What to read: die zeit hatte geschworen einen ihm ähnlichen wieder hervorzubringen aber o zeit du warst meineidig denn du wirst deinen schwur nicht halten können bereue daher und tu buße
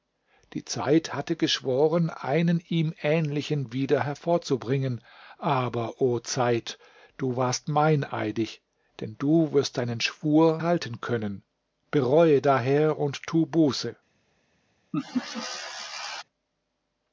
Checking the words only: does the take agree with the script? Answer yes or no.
no